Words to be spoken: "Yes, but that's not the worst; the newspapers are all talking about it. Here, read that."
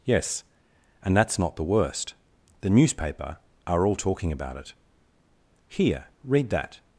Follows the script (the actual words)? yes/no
no